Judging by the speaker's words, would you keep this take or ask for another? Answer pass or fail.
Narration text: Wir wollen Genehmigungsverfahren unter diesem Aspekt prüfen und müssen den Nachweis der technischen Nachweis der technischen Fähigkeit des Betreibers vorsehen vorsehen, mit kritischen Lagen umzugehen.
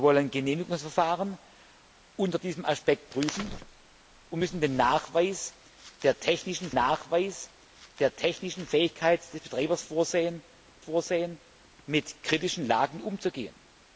pass